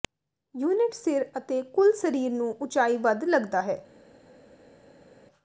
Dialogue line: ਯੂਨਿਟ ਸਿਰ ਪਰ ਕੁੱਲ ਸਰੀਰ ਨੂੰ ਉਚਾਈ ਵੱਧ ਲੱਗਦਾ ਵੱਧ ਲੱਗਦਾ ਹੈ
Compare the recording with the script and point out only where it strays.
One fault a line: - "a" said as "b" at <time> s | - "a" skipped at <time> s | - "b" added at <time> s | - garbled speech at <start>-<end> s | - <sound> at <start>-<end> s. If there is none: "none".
- "ਪਰ" said as "ਅਤੇ" at 1.4 s
- "ਵੱਧ ਲੱਗਦਾ" skipped at 3.6 s